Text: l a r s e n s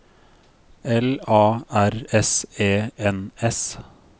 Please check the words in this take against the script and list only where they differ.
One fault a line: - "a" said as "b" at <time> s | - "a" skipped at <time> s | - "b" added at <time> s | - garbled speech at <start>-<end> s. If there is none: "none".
none